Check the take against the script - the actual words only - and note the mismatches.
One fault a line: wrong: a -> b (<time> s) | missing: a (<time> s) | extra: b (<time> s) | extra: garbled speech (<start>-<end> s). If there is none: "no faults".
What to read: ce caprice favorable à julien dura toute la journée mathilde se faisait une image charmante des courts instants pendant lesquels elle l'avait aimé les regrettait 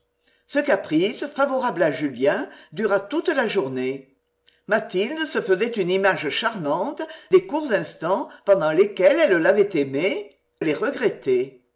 no faults